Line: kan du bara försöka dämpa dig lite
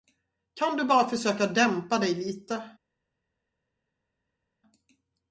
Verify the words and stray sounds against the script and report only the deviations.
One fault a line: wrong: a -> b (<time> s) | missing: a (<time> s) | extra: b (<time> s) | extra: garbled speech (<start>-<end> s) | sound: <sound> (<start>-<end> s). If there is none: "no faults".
no faults